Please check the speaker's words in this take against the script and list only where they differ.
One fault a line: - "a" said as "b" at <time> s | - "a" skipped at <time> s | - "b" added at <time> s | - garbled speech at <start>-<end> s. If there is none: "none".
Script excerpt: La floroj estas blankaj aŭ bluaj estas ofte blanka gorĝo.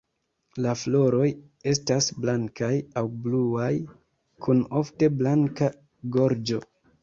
- "estas" said as "kun" at 4.5 s